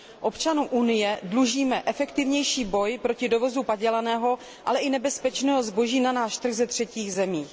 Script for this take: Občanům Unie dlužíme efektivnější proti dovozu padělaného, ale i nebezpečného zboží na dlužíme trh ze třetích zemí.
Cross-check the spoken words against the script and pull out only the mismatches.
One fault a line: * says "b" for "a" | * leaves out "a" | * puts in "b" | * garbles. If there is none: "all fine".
* puts in "boj"
* says "náš" for "dlužíme"